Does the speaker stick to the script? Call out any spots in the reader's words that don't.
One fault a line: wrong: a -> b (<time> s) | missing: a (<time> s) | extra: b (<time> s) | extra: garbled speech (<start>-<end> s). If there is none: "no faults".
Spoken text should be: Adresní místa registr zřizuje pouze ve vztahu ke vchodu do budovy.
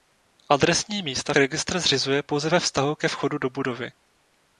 no faults